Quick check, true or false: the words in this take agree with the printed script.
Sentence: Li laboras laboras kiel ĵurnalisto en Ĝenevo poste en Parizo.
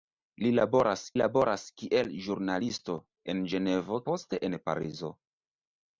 true